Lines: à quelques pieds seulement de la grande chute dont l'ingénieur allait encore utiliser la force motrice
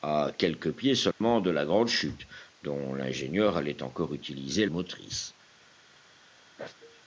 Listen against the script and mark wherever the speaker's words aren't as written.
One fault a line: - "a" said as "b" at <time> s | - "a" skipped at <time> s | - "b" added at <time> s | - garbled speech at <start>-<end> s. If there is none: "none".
- "la force" skipped at 4.7 s